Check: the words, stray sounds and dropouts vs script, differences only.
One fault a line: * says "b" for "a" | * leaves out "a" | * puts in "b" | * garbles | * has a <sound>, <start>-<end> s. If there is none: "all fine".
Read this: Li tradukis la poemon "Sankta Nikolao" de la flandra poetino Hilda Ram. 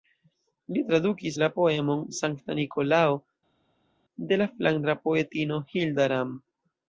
all fine